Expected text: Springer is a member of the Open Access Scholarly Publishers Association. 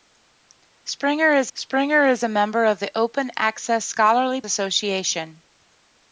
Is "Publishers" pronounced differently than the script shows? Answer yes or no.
yes